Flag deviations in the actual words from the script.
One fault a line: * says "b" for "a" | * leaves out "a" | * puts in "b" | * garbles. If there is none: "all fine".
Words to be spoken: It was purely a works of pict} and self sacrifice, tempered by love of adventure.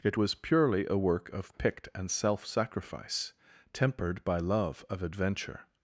* says "work" for "works"